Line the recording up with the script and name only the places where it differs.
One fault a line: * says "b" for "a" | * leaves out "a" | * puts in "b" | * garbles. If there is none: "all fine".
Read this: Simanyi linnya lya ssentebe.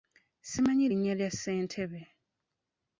all fine